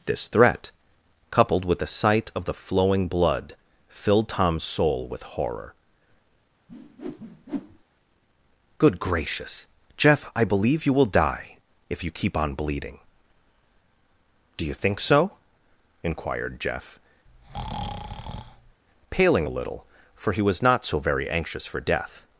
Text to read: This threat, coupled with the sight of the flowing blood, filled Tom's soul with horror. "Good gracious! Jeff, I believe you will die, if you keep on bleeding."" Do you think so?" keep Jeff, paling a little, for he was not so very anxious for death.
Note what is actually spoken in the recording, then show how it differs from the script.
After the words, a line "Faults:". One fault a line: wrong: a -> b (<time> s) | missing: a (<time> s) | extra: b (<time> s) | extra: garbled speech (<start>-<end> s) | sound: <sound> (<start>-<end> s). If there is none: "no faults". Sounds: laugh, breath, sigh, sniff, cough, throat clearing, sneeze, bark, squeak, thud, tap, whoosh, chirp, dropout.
This threat, coupled with the sight of the flowing blood, filled Tom's soul with horror. "Good gracious! Jeff, I believe you will die, if you keep on bleeding."" Do you think so?" inquired Jeff, paling a little, for he was not so very anxious for death.
Faults:
sound: whoosh (6.7-7.8 s)
wrong: keep -> inquired (16.0 s)
sound: breath (17.3-18.8 s)